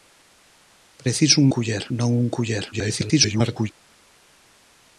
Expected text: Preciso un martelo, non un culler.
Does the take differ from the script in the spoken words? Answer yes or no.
yes